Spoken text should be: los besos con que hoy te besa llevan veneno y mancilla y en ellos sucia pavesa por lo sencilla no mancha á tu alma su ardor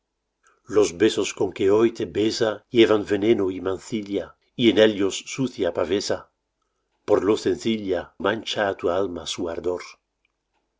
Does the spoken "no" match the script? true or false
false